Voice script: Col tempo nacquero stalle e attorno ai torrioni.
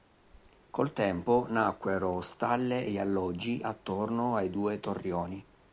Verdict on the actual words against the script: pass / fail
fail